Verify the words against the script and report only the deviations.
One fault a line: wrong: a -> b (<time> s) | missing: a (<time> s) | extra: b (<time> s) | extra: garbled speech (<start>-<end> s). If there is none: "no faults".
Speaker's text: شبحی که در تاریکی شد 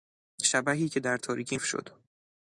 no faults